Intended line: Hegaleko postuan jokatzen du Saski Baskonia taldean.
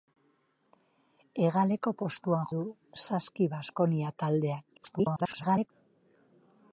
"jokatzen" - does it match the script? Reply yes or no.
no